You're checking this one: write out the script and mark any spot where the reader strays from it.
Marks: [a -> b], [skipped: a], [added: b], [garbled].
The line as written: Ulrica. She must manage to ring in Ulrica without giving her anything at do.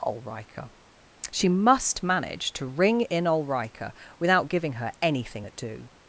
Ulrica. She must manage to ring in Ulrica without giving her anything at do.